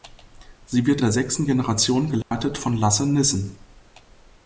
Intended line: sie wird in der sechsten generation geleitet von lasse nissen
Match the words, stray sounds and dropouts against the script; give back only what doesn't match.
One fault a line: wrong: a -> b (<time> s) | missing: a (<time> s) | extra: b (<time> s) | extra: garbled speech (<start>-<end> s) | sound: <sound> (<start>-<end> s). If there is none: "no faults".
missing: in (1.0 s)
sound: dropout (2.2-2.3 s)